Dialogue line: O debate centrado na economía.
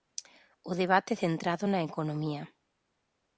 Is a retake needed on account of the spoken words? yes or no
no